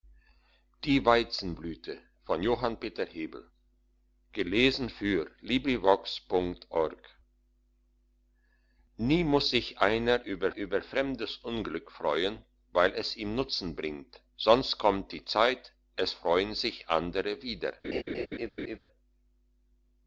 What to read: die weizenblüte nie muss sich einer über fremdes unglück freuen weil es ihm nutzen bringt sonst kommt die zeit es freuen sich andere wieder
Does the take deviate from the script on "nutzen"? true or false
false